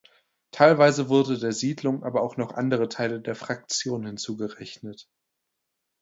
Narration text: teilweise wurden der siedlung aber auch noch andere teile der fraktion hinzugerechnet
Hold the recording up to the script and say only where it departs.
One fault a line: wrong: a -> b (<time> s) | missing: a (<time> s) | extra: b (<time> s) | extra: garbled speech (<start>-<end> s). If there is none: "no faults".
no faults